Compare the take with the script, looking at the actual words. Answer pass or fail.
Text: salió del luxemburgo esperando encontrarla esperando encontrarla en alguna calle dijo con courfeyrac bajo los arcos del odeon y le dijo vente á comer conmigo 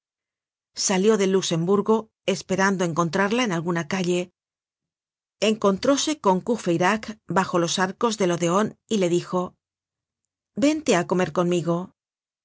fail